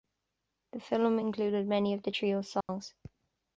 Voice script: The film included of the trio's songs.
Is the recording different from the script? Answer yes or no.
yes